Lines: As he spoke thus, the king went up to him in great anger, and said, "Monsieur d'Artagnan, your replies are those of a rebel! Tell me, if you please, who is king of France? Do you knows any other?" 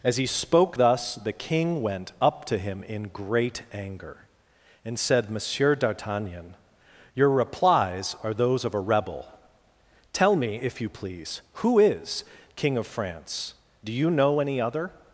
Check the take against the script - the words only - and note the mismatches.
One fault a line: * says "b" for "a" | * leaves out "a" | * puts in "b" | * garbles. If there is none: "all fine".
* says "know" for "knows"